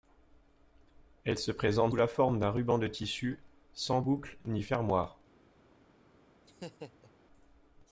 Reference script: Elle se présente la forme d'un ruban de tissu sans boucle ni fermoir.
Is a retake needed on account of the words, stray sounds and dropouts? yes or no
yes